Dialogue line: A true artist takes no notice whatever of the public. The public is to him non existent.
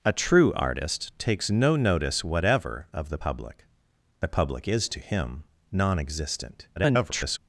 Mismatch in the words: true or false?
true